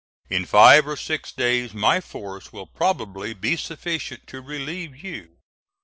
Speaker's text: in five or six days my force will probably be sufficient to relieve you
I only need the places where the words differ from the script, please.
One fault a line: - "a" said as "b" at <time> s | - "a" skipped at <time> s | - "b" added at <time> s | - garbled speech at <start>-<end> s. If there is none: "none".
none